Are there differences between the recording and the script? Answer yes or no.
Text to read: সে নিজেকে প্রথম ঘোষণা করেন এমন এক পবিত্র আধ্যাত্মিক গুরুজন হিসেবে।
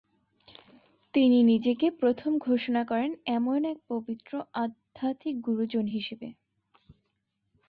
yes